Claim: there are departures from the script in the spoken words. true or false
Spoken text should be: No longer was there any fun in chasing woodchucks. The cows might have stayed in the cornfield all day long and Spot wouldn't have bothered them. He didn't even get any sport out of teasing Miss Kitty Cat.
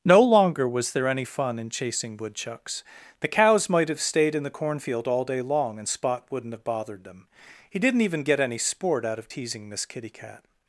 false